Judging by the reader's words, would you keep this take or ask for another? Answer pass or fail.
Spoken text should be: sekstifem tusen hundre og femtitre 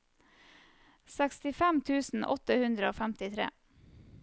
fail